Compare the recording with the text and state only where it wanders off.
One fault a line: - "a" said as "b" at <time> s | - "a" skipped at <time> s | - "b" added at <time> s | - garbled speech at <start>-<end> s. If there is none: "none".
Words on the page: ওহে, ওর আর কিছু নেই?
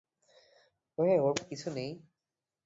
none